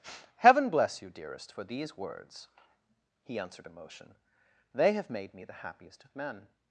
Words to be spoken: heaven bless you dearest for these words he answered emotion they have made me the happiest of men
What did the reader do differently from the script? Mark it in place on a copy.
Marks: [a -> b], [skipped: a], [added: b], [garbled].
heaven bless you dearest for these words he answered emotion they have made me the happiest of men